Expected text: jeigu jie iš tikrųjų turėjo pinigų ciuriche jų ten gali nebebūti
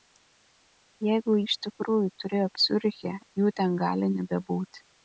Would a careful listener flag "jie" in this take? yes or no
yes